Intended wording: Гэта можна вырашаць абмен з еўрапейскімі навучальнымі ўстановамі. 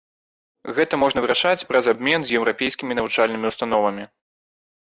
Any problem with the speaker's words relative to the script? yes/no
yes